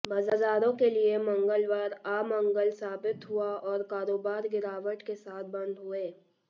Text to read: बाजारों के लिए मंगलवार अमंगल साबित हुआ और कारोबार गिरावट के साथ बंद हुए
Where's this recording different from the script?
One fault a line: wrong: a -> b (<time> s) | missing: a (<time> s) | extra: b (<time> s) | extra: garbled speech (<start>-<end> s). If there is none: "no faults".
no faults